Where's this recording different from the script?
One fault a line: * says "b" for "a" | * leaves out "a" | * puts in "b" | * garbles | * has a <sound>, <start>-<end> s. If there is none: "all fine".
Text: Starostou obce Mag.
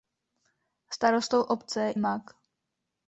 all fine